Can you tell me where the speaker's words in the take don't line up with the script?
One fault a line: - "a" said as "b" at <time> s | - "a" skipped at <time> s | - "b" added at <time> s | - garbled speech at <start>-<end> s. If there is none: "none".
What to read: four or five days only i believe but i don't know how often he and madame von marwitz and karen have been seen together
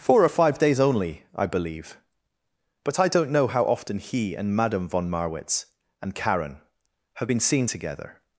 none